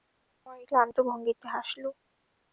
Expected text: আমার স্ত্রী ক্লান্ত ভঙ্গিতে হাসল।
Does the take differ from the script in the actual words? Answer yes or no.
yes